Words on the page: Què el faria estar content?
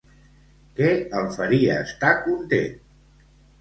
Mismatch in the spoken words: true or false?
false